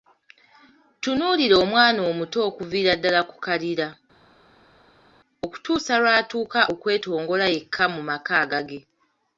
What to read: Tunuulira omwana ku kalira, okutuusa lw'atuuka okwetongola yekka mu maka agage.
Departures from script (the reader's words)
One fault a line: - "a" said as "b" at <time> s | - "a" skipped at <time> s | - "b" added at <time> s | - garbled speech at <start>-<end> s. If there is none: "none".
- "omuto okuviira ddala" added at 2.1 s